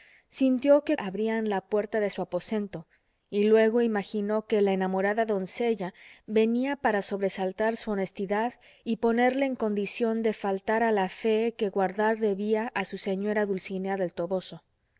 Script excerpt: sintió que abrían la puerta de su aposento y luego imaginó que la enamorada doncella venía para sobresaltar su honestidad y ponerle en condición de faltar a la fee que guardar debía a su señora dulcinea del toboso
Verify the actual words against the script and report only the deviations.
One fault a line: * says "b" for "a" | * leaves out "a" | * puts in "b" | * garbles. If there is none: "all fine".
all fine